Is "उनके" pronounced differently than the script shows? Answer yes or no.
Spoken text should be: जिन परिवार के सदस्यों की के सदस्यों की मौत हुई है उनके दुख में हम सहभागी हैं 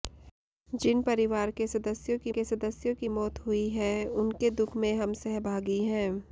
no